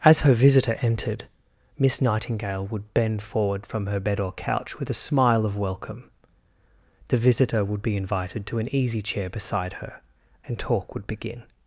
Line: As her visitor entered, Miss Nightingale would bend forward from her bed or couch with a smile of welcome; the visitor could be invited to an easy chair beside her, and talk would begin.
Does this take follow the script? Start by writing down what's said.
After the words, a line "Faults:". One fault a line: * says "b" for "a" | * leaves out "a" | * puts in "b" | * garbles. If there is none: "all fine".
As her visitor entered, Miss Nightingale would bend forward from her bed or couch with a smile of welcome; the visitor would be invited to an easy chair beside her, and talk would begin.
Faults:
* says "would" for "could"